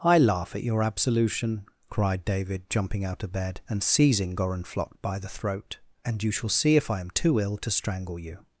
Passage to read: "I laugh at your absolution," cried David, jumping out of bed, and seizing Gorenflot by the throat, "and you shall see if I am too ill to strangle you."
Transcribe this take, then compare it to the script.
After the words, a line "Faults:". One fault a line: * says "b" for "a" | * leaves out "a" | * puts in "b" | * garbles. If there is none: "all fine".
"I laugh at your absolution," cried David, jumping out of bed, and seizing Gorenflot by the throat, "and you shall see if I am too ill to strangle you."
Faults:
all fine